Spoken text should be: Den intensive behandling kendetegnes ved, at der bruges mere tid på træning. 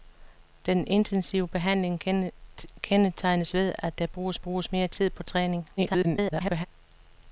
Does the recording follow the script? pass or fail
fail